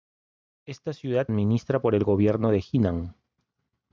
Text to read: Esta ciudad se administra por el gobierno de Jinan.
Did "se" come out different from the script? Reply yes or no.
yes